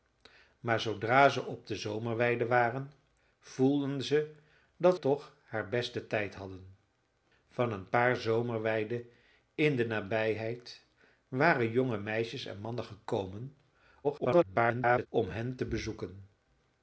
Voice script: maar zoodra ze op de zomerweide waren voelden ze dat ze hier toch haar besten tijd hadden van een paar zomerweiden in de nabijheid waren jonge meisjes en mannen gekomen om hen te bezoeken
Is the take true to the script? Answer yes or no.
no